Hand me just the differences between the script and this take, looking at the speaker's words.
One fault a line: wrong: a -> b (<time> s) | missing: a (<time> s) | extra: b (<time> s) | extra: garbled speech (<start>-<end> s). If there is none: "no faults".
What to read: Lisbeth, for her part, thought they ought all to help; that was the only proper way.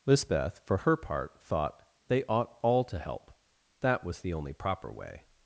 no faults